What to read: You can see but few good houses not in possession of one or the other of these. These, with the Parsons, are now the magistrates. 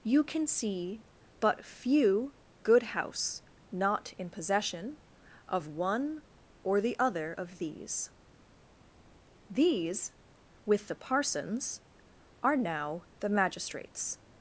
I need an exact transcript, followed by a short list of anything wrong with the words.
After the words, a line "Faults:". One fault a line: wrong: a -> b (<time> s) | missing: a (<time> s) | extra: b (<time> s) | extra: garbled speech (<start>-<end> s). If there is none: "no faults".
You can see but few good house not in possession of one or the other of these. These, with the Parsons, are now the magistrates.
Faults:
wrong: houses -> house (2.8 s)